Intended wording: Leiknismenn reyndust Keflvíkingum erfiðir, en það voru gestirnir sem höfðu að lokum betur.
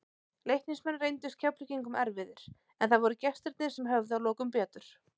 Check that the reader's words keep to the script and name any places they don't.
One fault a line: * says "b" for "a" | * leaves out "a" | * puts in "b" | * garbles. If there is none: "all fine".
all fine